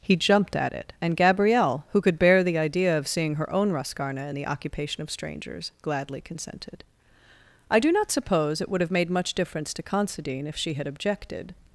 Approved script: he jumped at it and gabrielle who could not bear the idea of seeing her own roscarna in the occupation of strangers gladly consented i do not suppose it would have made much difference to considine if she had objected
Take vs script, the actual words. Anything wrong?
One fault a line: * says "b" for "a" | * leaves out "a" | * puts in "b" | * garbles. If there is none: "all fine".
* leaves out "not"